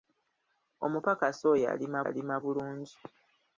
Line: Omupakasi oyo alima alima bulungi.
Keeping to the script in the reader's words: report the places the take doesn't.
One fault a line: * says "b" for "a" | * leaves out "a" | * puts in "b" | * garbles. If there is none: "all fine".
all fine